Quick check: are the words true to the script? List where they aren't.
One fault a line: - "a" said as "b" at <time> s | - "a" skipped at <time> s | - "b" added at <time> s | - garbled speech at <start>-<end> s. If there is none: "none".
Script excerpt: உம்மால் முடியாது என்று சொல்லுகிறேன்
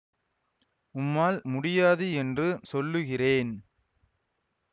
none